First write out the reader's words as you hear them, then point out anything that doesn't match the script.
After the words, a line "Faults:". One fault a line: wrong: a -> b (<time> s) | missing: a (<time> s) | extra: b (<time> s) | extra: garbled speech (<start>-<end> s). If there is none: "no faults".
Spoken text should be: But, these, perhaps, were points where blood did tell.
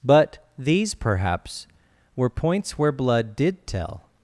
But, these, perhaps, were points where blood did tell.
Faults:
no faults